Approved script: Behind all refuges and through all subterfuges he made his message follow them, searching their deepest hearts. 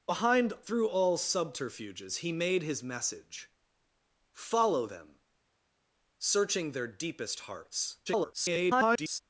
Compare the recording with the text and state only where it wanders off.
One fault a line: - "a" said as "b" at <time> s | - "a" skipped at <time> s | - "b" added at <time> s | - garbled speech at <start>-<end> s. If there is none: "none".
- "all refuges and" skipped at 0.5 s
- garbled speech at 8.1-9.2 s